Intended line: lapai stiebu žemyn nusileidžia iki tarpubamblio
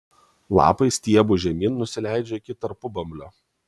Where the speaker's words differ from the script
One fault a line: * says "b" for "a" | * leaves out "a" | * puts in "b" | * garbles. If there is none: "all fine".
all fine